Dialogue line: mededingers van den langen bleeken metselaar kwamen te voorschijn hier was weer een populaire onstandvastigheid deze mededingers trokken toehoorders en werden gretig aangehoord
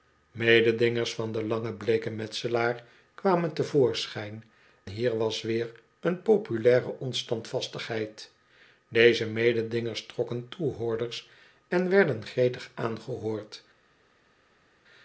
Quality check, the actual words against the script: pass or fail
pass